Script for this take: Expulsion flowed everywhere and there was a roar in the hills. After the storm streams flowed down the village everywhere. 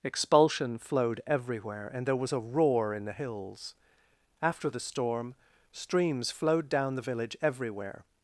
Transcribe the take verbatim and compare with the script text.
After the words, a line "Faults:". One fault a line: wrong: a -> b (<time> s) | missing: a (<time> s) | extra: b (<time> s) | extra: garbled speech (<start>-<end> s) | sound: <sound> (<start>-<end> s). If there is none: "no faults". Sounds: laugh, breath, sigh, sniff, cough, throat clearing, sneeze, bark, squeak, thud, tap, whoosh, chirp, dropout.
Expulsion flowed everywhere and there was a roar in the hills. After the storm streams flowed down the village everywhere.
Faults:
no faults